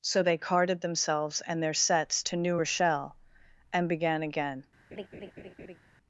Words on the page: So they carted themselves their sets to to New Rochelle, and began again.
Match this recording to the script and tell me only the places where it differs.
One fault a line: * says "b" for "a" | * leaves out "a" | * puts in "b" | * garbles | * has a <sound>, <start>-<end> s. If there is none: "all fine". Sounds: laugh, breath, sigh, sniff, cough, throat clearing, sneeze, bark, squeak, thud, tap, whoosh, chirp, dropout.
* puts in "and"
* leaves out "to"
* has a laugh, 4.9-5.8 s